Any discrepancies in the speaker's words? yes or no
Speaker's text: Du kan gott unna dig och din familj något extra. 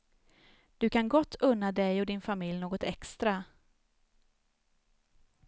no